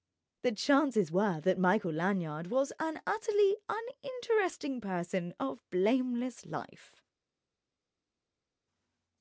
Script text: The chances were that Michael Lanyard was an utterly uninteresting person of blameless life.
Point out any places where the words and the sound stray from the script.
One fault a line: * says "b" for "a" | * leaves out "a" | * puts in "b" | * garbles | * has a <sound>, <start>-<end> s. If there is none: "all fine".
all fine